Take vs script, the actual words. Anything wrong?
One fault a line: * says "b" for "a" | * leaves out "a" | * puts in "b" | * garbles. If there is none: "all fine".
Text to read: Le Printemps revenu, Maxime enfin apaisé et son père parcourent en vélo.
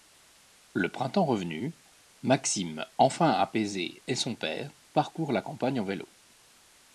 * puts in "la campagne"